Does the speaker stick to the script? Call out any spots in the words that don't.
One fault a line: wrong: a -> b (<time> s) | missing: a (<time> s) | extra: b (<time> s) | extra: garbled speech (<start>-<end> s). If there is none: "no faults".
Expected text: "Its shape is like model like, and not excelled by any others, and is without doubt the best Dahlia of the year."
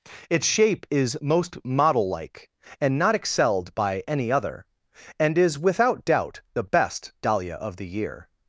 wrong: like -> most (1.2 s)
wrong: others -> other (4.3 s)